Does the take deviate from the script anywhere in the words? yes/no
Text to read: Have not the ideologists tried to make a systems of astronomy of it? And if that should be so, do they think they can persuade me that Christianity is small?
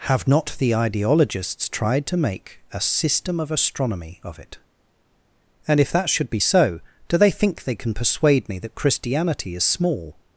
yes